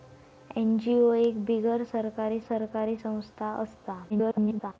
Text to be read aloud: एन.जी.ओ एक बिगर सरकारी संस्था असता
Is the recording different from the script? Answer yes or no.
yes